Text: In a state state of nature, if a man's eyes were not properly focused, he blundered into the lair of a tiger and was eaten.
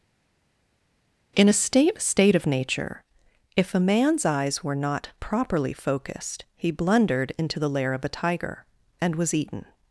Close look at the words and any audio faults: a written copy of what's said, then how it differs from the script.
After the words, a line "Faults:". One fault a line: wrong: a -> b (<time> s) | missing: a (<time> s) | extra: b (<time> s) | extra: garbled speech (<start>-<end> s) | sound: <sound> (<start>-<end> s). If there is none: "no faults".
In a state state of nature, if a man's eyes were not properly focused, he blundered into the lair of a tiger and was eaten.
Faults:
no faults